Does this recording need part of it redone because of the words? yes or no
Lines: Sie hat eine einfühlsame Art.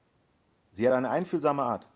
no